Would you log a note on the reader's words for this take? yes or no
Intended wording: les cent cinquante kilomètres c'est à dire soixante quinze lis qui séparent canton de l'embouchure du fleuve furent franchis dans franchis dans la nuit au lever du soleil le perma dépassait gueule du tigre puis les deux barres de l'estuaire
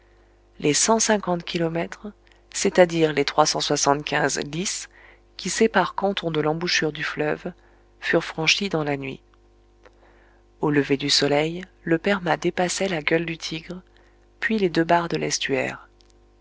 yes